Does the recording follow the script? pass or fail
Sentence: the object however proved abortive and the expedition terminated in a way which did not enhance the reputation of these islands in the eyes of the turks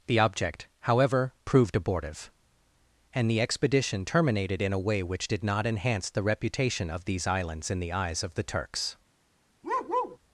pass